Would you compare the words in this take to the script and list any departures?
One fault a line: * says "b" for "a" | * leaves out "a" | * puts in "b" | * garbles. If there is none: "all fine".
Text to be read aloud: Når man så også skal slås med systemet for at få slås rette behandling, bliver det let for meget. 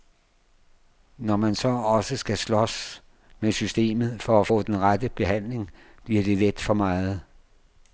* says "den" for "slås"